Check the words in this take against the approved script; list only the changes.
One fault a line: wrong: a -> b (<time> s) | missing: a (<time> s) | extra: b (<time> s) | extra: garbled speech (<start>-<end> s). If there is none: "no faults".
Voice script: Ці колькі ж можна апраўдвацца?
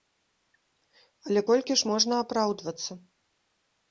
wrong: Ці -> Але (1.3 s)